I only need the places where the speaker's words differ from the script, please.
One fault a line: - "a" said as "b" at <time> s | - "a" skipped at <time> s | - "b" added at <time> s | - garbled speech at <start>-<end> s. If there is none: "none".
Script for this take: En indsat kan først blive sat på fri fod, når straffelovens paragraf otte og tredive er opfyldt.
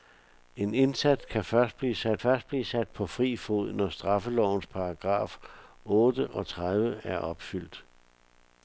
- "først blive sat" added at 2.2 s